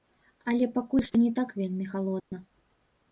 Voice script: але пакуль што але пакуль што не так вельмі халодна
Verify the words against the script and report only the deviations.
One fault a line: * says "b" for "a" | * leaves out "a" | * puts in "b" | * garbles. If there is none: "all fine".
* leaves out "але пакуль што"